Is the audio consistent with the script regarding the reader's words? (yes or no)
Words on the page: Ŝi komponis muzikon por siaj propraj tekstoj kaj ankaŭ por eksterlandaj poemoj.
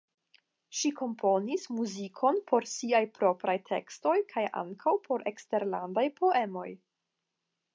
yes